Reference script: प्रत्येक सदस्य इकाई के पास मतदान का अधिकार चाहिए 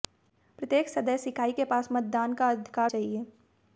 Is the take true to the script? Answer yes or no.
yes